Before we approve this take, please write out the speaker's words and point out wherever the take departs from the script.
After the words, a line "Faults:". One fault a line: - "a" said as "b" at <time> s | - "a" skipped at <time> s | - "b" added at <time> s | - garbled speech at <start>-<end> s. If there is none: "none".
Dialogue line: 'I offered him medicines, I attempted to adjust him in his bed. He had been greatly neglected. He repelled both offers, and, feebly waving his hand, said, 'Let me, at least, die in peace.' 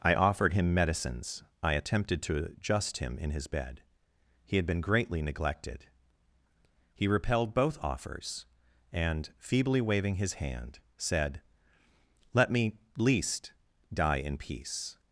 'I offered him medicines, I attempted to adjust him in his bed. He had been greatly neglected. He repelled both offers, and, feebly waving his hand, said, 'Let me, least, die in peace.'
Faults:
- "at" skipped at 12.8 s